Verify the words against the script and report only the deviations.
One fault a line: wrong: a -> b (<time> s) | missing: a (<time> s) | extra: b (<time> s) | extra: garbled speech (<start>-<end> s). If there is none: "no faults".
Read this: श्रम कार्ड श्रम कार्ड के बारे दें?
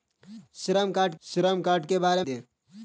no faults